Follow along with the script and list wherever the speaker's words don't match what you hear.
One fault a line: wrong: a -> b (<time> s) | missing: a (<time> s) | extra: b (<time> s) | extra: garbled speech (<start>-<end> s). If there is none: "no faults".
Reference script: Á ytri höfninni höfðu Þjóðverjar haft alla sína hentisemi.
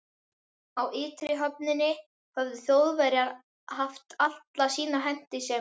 no faults